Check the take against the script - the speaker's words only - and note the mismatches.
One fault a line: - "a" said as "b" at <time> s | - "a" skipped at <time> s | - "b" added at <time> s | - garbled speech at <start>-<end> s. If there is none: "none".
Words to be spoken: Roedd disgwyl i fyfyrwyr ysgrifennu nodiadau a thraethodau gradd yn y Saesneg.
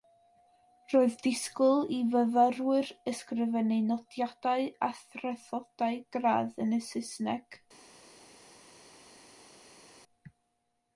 none